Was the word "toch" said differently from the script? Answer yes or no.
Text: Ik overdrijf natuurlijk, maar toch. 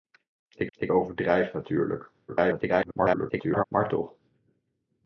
no